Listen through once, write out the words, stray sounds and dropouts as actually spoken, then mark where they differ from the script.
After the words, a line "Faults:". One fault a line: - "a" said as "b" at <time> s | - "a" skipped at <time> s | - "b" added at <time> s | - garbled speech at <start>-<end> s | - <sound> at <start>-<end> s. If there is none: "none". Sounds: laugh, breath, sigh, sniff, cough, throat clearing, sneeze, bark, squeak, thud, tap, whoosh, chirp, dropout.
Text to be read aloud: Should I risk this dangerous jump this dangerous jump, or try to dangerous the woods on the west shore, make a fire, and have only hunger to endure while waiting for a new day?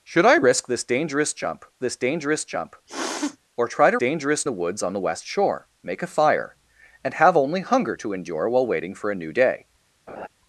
Should I risk this dangerous jump this dangerous jump, or try to dangerous the woods on the west shore, make a fire, and have only hunger to endure while waiting for a new day?
Faults:
- sniff at 2.9-3.4 s
- laugh at 10.1-10.3 s